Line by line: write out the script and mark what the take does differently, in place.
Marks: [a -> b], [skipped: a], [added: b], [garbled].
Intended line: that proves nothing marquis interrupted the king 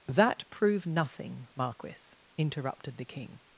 that [proves -> prove] nothing marquis interrupted the king